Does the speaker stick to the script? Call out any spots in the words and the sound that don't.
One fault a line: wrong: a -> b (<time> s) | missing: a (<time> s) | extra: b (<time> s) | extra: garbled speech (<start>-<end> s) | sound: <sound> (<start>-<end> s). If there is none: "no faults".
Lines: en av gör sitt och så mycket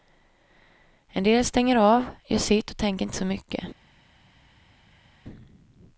extra: del stänger (1.2 s)
extra: tänker inte (2.8 s)